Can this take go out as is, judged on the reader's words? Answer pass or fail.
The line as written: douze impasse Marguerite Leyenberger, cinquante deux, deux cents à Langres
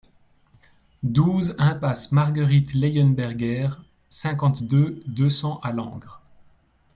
pass